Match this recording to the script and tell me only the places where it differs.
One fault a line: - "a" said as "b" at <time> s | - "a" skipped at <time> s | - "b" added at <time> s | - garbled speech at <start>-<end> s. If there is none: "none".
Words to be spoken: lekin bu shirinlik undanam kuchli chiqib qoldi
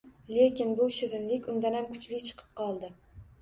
none